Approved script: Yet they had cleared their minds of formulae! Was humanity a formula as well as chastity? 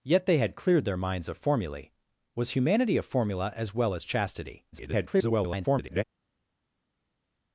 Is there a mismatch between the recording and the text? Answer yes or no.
yes